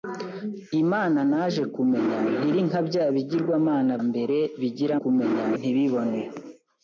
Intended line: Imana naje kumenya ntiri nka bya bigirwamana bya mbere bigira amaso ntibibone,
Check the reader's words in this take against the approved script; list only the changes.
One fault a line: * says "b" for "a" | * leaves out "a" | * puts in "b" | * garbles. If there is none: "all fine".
* leaves out "bya"
* says "kumenya" for "amaso"